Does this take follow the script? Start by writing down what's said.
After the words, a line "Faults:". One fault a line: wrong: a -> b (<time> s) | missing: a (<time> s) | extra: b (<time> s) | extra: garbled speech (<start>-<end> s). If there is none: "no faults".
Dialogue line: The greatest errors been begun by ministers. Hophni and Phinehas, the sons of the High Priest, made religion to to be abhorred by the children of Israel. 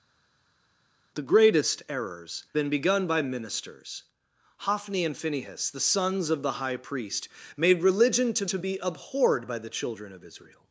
The greatest errors been begun by ministers. Hophni and Phinehas, the sons of the High Priest, made religion to to be abhorred by the children of Israel.
Faults:
no faults